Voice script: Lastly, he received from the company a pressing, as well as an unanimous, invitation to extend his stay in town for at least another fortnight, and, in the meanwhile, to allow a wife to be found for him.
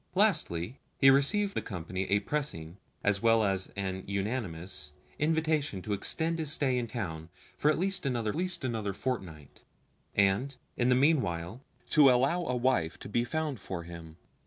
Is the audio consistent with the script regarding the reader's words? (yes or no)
no